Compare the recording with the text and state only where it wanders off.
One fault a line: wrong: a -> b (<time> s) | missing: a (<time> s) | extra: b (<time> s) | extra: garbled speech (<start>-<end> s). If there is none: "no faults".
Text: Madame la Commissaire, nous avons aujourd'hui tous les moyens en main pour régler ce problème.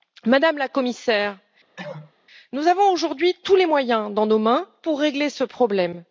no faults